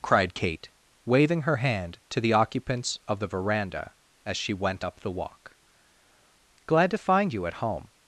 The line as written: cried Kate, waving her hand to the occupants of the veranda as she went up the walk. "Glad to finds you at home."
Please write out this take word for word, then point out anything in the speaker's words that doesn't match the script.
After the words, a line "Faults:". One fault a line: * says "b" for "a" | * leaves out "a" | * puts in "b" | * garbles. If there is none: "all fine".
cried Kate, waving her hand to the occupants of the veranda as she went up the walk. "Glad to find you at home."
Faults:
* says "find" for "finds"